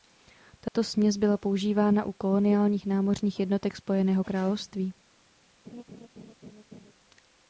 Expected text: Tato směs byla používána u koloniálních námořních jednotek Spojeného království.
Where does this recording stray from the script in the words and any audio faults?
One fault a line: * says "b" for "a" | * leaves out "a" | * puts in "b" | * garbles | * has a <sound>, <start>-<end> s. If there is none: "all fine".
* has a dropout, 0.7-0.7 s
* has a laugh, 5.6-6.9 s